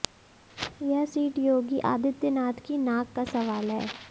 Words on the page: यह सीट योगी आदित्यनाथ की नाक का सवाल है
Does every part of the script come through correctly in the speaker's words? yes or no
yes